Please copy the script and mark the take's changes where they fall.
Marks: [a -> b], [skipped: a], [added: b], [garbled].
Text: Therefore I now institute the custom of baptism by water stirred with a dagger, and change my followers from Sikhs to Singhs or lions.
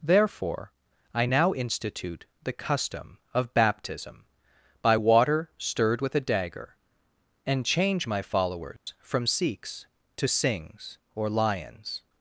Therefore I now institute the custom of baptism by water stirred with a dagger, and change my followers from Sikhs to Singhs or lions.